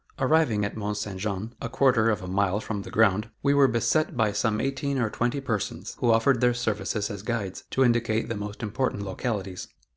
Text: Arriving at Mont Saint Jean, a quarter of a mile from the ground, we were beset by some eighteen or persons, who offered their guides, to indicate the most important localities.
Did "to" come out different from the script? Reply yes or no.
no